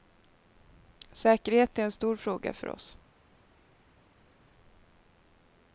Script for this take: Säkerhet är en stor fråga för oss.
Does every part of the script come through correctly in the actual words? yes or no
yes